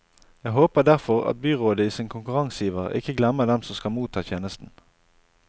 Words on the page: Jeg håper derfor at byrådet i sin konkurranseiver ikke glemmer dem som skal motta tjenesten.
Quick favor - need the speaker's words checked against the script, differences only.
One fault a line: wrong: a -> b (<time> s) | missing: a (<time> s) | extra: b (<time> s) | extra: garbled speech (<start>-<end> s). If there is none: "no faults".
no faults